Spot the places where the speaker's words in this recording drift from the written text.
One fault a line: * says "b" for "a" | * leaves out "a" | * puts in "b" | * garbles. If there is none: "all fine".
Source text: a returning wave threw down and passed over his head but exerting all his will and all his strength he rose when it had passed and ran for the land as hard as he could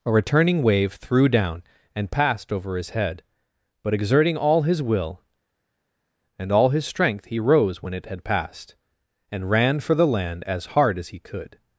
all fine